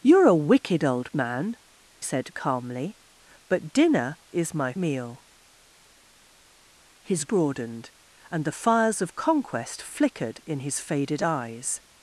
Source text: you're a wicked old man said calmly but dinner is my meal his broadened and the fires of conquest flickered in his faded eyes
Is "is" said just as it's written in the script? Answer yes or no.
yes